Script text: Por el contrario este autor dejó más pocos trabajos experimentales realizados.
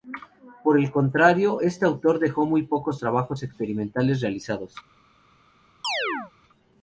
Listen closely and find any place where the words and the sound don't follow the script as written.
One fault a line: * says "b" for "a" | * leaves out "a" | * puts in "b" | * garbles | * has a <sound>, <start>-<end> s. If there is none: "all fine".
* says "muy" for "más"
* has a chirp, 5.8-6.3 s